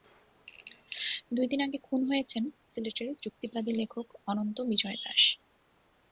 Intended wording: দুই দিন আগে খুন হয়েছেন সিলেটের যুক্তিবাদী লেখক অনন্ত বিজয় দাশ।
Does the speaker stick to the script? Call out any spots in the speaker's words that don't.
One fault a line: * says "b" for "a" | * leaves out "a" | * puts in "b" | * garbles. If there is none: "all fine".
all fine